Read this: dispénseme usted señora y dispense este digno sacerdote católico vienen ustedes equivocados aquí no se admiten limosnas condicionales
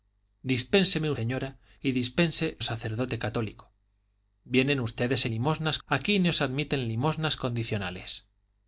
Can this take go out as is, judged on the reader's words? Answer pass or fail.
fail